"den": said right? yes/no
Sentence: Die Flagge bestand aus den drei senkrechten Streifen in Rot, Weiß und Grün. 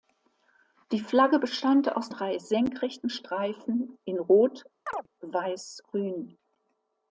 no